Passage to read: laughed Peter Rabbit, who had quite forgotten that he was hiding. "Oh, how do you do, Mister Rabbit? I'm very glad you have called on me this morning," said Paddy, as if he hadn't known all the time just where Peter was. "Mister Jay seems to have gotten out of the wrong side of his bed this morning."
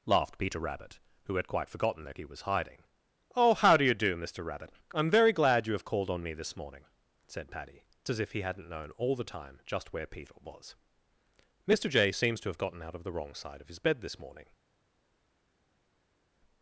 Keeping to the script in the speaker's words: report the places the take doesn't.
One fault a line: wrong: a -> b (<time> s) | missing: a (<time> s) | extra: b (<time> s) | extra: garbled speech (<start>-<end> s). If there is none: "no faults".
no faults